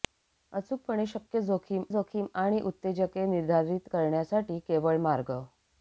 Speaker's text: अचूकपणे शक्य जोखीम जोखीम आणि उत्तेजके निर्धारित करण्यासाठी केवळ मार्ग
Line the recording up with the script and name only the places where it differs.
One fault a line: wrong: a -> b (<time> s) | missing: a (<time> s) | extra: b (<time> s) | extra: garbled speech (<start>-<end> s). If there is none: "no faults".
no faults